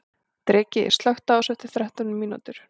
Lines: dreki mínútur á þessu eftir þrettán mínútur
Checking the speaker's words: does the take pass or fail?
fail